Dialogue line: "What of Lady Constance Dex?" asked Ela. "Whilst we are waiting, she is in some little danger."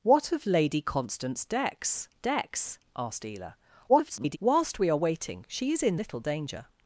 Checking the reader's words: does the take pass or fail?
fail